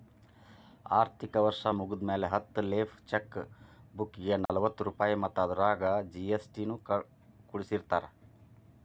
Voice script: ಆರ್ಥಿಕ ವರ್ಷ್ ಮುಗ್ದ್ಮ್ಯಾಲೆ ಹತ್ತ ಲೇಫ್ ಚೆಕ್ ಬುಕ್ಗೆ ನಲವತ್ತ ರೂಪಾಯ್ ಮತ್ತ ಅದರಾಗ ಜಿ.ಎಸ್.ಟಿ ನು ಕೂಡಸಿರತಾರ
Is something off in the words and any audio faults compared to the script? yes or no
yes